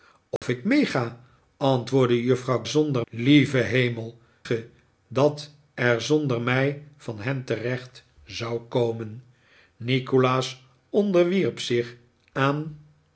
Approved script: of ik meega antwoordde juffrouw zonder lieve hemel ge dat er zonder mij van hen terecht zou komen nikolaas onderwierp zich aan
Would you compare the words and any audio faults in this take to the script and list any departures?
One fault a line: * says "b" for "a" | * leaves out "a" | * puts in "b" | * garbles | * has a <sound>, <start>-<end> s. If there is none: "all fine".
* has a dropout, 0.4-0.4 s